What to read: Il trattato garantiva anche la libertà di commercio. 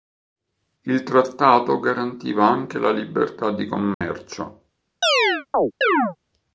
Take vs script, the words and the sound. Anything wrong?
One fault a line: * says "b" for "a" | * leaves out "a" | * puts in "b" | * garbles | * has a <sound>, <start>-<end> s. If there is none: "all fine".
* has a dropout, 3.9-4.0 s
* has a chirp, 5.0-6.2 s